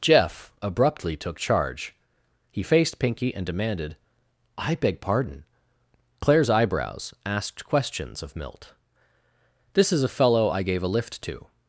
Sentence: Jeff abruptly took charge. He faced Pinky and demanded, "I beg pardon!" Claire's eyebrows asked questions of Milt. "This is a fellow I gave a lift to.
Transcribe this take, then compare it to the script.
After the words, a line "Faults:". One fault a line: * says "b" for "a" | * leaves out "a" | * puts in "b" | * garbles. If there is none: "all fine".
Jeff abruptly took charge. He faced Pinky and demanded, "I beg pardon!" Claire's eyebrows asked questions of Milt. "This is a fellow I gave a lift to.
Faults:
all fine